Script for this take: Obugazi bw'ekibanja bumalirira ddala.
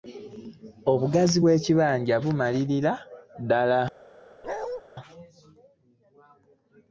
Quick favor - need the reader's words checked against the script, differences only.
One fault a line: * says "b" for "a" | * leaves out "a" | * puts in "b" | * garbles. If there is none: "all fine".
all fine